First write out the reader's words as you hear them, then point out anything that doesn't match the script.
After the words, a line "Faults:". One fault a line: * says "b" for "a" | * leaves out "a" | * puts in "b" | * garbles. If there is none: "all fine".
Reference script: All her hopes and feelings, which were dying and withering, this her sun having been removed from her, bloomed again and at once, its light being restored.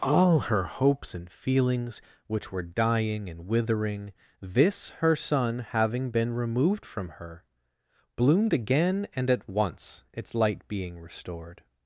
All her hopes and feelings, which were dying and withering, this her sun having been removed from her, bloomed again and at once, its light being restored.
Faults:
all fine